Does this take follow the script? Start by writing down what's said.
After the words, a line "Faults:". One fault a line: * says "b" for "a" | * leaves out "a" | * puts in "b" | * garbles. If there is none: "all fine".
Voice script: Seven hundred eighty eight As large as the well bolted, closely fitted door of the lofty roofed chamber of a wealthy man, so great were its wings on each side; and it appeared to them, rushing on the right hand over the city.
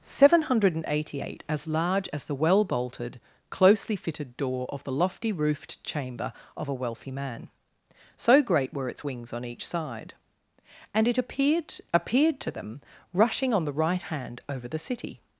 Seven hundred eighty eight As large as the well bolted, closely fitted door of the lofty roofed chamber of a wealthy man, so great were its wings on each side; and it appeared appeared to them, rushing on the right hand over the city.
Faults:
* puts in "appeared"